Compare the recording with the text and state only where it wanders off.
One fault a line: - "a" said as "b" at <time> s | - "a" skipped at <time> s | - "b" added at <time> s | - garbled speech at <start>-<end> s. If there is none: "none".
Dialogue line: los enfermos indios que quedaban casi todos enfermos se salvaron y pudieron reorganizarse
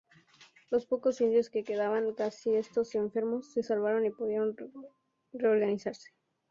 - "enfermos" said as "pocos" at 0.9 s